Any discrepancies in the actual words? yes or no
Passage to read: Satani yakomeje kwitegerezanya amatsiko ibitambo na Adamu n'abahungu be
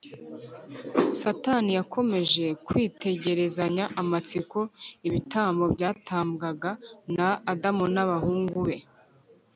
yes